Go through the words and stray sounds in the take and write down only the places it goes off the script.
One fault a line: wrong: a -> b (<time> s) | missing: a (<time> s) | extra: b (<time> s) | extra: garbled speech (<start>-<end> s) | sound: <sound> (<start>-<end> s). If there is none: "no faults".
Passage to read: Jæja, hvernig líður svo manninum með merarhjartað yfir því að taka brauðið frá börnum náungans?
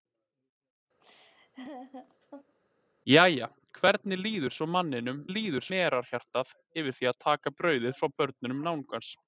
sound: laugh (1.0-2.5 s)
wrong: með -> líður (5.3 s)